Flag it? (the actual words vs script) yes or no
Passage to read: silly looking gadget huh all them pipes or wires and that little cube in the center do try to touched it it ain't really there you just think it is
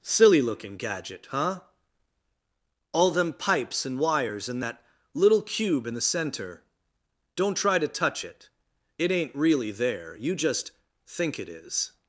yes